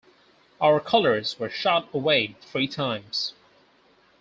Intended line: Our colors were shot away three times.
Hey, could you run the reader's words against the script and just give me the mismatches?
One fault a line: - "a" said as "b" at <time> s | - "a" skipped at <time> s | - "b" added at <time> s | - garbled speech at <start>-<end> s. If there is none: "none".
none